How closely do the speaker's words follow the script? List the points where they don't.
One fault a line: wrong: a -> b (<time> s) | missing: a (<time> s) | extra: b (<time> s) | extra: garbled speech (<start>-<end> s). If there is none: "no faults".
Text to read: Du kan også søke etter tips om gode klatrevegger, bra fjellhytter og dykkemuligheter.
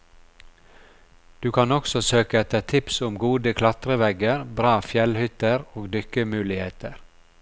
no faults